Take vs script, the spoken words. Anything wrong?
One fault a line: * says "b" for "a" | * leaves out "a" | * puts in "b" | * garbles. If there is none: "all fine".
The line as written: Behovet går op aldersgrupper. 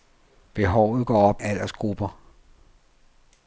all fine